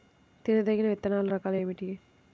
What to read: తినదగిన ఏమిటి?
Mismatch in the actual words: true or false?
true